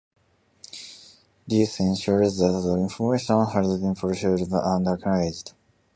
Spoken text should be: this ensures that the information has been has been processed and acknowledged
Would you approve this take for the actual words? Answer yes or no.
no